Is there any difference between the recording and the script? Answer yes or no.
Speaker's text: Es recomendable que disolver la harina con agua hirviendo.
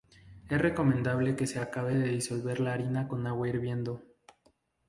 yes